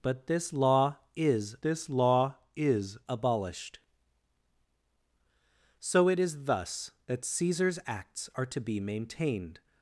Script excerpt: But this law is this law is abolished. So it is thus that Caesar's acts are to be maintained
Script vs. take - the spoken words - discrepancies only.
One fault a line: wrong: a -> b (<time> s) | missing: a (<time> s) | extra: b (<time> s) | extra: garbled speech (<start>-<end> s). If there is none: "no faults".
no faults